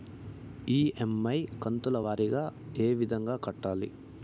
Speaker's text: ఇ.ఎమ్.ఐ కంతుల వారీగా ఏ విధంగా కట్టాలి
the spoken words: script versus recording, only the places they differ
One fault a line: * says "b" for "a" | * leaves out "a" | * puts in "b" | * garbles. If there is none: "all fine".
all fine